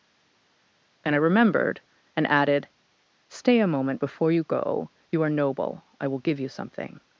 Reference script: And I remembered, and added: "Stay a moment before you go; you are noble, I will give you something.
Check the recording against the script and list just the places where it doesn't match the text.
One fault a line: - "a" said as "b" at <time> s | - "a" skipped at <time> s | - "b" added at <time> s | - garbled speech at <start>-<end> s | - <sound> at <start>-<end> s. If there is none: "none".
none